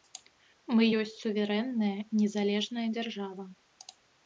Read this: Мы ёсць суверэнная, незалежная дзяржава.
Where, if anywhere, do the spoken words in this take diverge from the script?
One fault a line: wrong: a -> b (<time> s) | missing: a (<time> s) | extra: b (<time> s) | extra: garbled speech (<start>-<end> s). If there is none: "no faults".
no faults